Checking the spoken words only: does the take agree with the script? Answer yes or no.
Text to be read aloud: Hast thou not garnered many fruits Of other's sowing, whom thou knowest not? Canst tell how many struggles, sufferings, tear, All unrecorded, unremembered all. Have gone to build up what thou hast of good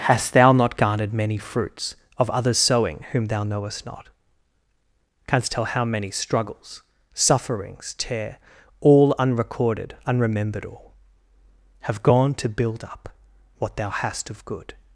yes